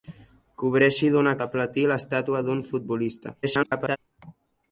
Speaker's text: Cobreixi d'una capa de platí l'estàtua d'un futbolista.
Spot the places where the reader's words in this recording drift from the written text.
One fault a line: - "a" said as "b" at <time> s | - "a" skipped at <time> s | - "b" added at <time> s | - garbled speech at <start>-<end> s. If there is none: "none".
- "capa" skipped at 1.4 s
- garbled speech at 3.4-4.0 s